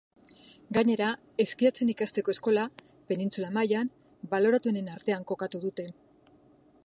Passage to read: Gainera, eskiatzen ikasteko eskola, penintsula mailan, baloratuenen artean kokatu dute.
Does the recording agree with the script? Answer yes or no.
yes